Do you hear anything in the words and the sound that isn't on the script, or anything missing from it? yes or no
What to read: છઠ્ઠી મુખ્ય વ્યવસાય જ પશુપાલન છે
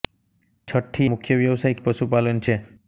no